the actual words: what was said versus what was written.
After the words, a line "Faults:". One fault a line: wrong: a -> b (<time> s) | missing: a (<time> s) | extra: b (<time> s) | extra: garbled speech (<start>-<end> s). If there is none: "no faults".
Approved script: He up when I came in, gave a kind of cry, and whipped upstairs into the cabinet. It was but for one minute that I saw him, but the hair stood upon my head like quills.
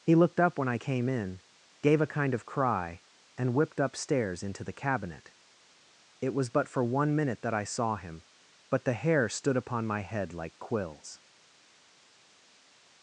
He looked up when I came in, gave a kind of cry, and whipped upstairs into the cabinet. It was but for one minute that I saw him, but the hair stood upon my head like quills.
Faults:
extra: looked (0.1 s)